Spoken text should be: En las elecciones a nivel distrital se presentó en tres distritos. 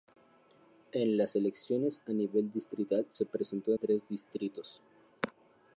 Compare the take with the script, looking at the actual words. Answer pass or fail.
fail